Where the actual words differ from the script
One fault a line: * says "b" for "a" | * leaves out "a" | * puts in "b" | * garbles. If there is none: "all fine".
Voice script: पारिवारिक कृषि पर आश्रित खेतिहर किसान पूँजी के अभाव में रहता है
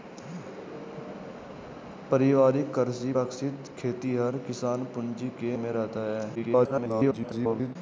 * leaves out "पर"
* leaves out "अभाव"
* garbles